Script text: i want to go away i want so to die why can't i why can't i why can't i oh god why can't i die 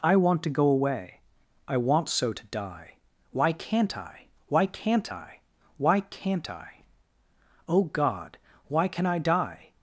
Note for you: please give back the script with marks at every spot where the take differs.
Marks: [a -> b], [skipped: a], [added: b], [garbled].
i want to go away i want so to die why can't i why can't i why can't i oh god why [can't -> can] i die